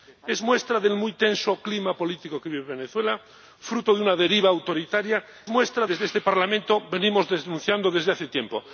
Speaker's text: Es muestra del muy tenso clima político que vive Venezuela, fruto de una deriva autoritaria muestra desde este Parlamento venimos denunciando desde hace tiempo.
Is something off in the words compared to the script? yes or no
no